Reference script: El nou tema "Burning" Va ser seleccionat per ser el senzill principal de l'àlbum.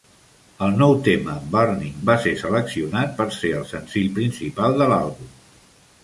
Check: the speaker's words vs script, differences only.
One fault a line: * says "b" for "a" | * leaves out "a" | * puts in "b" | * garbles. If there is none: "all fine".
all fine